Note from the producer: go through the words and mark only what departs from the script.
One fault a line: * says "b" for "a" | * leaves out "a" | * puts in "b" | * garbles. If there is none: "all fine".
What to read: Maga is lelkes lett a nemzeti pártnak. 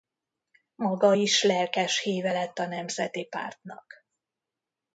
* puts in "híve"